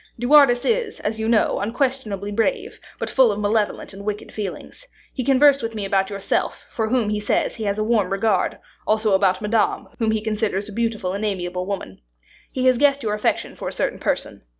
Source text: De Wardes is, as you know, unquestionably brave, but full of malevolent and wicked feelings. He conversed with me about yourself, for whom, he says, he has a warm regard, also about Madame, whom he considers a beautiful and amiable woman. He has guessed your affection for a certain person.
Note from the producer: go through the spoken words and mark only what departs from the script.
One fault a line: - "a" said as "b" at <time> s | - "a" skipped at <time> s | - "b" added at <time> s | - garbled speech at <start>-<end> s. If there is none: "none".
none